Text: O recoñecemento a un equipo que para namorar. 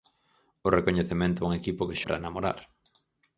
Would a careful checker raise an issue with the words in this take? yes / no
no